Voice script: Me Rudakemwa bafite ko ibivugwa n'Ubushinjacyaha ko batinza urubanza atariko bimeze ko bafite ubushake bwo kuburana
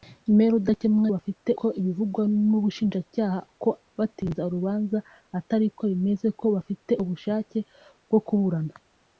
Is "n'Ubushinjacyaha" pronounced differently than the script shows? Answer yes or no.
no